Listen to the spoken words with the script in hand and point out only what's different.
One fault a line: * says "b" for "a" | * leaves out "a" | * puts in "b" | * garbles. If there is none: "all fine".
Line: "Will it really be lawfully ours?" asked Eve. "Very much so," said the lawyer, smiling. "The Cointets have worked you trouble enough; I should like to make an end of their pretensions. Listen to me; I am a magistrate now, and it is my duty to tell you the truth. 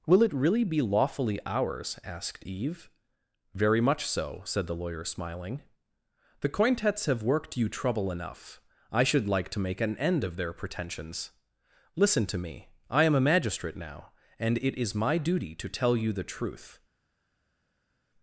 all fine